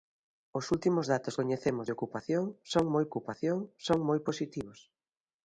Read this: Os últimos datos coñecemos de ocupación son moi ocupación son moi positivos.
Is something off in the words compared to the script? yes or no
no